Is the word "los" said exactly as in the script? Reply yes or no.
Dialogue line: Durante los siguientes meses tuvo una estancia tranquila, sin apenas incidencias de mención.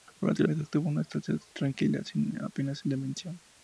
no